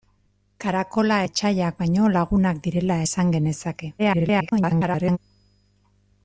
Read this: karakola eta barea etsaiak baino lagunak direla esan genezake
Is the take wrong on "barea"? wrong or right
wrong